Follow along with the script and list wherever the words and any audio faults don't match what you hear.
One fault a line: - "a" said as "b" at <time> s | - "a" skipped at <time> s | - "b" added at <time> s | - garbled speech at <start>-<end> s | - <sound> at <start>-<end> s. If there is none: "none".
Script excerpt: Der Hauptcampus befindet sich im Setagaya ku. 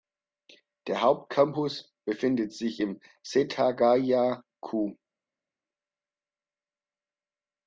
none